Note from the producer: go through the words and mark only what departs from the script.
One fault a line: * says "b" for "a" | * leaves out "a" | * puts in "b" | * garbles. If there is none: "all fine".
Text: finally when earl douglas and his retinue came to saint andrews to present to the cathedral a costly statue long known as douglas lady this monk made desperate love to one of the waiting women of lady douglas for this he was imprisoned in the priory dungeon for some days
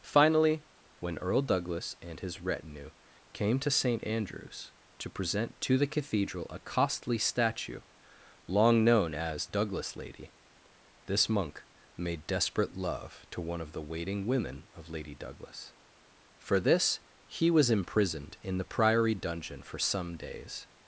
all fine